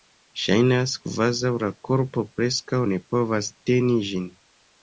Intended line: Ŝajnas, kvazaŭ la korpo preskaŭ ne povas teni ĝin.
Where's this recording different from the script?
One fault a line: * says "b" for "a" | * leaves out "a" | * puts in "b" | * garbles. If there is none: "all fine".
all fine